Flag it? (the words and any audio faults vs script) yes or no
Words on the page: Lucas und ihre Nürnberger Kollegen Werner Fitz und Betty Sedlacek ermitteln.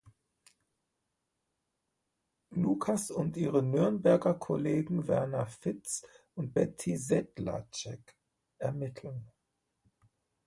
no